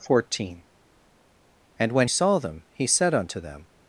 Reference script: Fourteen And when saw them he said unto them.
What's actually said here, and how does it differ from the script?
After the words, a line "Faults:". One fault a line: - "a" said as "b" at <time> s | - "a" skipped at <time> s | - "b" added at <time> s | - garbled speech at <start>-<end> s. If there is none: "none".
Fourteen And when saw them he said unto them.
Faults:
none